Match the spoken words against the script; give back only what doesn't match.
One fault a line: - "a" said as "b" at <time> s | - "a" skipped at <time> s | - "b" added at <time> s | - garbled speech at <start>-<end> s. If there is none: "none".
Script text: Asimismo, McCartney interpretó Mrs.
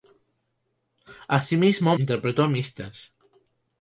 - "McCartney" skipped at 1.9 s